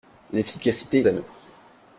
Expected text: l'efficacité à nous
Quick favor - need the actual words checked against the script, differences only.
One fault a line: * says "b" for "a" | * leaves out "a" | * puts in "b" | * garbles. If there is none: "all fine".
all fine